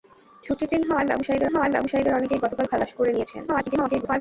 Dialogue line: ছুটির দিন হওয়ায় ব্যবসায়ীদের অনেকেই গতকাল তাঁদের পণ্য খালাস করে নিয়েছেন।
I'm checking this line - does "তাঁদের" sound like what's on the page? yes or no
no